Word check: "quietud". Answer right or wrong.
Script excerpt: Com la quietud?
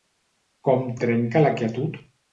right